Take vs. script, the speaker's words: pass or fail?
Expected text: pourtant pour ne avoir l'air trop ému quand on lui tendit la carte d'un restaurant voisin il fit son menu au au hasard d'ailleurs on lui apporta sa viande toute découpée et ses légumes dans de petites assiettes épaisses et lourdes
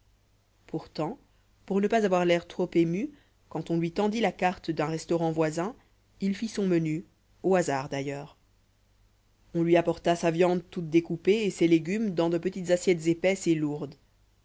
fail